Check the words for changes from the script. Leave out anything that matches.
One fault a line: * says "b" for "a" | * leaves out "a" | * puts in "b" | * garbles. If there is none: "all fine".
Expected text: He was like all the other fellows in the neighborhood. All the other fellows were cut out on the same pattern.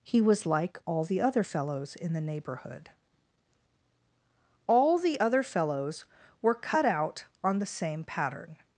all fine